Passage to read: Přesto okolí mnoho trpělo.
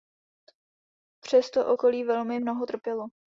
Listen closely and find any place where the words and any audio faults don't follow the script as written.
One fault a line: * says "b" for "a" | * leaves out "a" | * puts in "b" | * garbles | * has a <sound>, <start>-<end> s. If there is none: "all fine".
* puts in "velmi"